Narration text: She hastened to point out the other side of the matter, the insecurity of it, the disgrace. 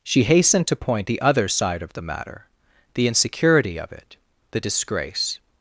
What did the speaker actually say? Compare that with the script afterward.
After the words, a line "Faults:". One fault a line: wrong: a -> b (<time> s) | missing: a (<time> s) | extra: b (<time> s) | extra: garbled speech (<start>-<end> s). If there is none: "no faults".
She hastened to point the other side of the matter, the insecurity of it, the disgrace.
Faults:
missing: out (1.1 s)